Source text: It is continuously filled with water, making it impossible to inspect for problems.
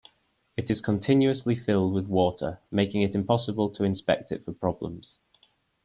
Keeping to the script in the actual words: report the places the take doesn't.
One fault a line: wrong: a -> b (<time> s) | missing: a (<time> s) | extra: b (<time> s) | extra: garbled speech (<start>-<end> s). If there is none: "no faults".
extra: it (4.3 s)